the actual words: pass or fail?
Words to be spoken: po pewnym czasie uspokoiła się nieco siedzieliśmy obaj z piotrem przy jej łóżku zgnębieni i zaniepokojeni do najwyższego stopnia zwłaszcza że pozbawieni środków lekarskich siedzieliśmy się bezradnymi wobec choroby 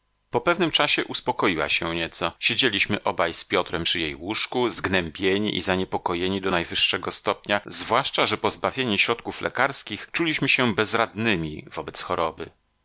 fail